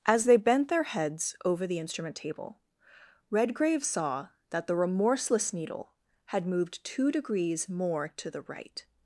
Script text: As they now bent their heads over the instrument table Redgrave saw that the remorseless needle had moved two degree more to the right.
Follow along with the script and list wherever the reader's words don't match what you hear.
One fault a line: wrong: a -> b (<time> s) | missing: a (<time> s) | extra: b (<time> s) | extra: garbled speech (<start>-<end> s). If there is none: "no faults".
missing: now (0.4 s)
wrong: degree -> degrees (7.1 s)